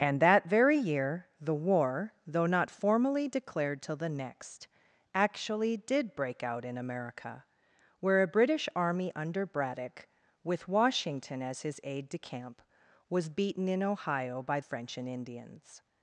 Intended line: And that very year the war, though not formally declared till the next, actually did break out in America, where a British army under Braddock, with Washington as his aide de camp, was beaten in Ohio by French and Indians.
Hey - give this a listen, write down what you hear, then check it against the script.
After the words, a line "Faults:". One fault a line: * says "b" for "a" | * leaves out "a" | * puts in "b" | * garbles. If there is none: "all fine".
And that very year the war, though not formally declared till the next, actually did break out in America, where a British army under Braddock, with Washington as his aide de camp, was beaten in Ohio by French and Indians.
Faults:
all fine